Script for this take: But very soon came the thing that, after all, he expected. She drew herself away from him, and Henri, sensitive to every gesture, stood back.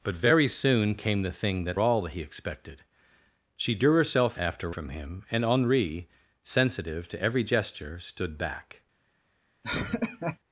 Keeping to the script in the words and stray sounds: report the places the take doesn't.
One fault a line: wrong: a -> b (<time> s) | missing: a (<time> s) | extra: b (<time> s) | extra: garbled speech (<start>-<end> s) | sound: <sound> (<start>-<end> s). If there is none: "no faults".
missing: after (1.8 s)
wrong: away -> after (4.4 s)
sound: laugh (9.6-10.4 s)